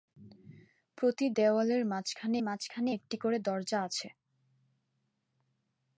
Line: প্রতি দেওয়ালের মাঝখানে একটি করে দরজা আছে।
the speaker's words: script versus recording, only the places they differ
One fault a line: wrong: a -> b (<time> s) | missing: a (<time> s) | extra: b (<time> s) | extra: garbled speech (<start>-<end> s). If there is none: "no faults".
extra: মাঝখানে (2.4 s)